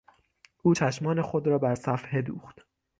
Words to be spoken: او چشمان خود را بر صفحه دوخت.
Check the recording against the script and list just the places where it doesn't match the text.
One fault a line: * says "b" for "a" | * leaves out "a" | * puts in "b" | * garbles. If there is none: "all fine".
all fine